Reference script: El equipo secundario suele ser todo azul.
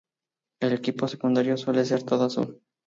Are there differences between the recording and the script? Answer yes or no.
no